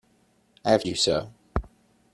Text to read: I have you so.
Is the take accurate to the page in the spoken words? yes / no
yes